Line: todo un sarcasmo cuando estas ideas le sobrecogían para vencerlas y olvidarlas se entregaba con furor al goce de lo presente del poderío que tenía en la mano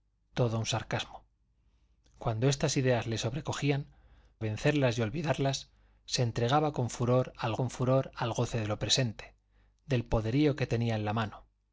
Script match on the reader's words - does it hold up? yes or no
no